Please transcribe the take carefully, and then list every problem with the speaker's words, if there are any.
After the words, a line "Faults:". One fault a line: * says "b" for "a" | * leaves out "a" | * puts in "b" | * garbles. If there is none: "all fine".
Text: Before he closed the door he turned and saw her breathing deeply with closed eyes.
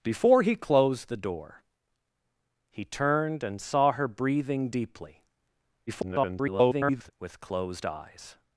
Before he closed the door he turned and saw her breathing deeply [garbled] with closed eyes.
Faults:
* garbles